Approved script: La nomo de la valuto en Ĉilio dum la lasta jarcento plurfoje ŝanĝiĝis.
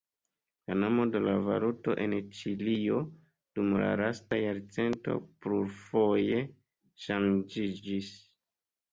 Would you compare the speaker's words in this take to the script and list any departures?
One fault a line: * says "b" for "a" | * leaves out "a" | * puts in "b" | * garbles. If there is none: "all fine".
all fine